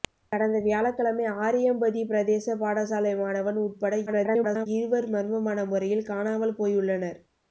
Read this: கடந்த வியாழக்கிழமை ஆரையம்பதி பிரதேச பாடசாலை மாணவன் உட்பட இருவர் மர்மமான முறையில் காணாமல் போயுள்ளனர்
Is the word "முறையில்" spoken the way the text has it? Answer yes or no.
yes